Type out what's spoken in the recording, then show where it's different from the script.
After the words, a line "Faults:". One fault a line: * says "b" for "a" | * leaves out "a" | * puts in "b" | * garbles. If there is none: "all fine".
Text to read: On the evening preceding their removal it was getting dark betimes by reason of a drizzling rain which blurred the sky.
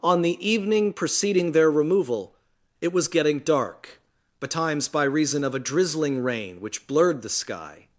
On the evening preceding their removal it was getting dark betimes by reason of a drizzling rain which blurred the sky.
Faults:
all fine